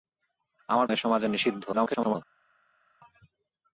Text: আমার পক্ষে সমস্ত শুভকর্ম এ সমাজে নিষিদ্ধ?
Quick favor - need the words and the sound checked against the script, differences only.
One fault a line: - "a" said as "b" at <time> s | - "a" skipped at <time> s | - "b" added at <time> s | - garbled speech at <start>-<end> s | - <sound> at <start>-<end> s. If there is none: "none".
- "পক্ষে সমস্ত শুভকর্ম" skipped at 0.9 s
- garbled speech at 1.7-2.2 s